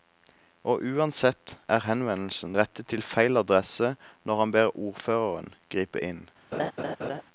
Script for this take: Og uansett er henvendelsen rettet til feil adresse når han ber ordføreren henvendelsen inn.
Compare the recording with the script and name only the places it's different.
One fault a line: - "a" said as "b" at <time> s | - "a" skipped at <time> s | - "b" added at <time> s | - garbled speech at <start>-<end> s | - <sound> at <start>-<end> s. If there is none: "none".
- "henvendelsen" said as "gripe" at 5.7 s
- laugh at 6.5-7.2 s